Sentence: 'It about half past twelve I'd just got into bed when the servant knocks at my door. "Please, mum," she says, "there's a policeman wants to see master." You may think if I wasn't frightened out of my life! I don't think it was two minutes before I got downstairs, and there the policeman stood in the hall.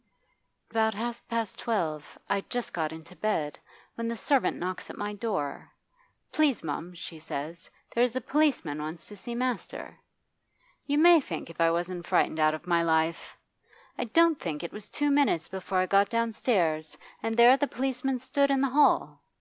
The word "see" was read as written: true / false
true